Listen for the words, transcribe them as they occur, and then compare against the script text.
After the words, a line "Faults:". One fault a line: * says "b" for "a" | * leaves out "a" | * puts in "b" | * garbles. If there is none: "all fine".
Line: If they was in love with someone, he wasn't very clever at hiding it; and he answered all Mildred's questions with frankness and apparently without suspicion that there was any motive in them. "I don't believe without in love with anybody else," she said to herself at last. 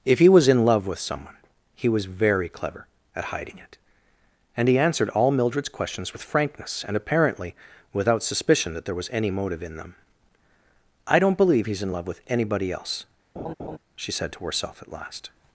If he was in love with someone, he was very clever at hiding it; and he answered all Mildred's questions with frankness and apparently without suspicion that there was any motive in them. "I don't believe he's in love with anybody else," she said to herself at last.
Faults:
* says "he" for "they"
* says "was" for "wasn't"
* says "he's" for "without"